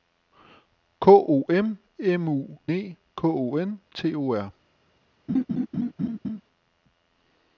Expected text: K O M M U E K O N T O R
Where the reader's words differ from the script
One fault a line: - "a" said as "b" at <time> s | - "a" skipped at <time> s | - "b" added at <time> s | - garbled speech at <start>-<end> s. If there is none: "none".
none